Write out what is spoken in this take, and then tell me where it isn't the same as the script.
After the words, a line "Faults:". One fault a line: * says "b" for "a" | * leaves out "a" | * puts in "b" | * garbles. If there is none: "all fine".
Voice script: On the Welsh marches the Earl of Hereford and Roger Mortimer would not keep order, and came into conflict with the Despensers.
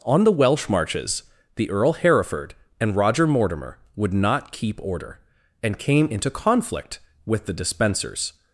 On the Welsh marches the Earl Hereford and Roger Mortimer would not keep order, and came into conflict with the Despensers.
Faults:
* leaves out "of"